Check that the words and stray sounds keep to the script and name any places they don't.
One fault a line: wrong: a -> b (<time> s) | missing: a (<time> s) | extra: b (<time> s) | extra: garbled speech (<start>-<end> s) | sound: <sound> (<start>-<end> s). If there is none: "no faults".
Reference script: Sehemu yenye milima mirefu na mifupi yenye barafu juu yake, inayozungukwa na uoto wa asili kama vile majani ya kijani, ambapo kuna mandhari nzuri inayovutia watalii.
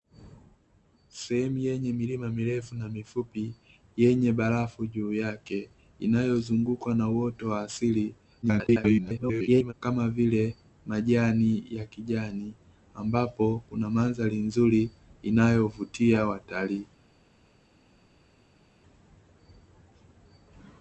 extra: garbled speech (8.4-9.7 s)